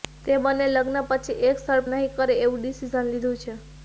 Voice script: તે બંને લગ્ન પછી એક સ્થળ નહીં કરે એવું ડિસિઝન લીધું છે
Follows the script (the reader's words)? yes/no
yes